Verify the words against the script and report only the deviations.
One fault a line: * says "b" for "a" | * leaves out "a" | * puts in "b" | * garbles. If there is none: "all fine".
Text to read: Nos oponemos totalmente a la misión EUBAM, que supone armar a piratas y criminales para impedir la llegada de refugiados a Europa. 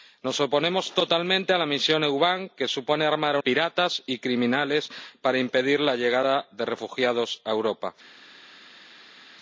all fine